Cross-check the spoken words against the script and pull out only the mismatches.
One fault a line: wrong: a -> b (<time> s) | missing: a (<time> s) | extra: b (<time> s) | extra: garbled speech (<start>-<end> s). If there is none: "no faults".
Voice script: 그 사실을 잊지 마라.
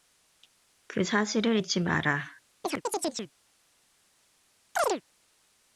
no faults